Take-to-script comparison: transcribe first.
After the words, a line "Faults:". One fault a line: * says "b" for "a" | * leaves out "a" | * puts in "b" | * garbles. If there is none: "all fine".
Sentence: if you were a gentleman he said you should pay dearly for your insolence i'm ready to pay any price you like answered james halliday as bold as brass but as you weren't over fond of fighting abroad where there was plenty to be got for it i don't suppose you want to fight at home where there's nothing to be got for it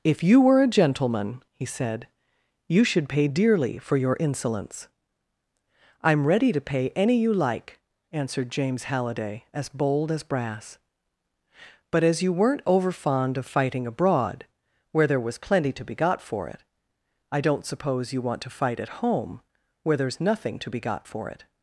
if you were a gentleman he said you should pay dearly for your insolence i'm ready to pay any you like answered james halliday as bold as brass but as you weren't over fond of fighting abroad where there was plenty to be got for it i don't suppose you want to fight at home where there's nothing to be got for it
Faults:
* leaves out "price"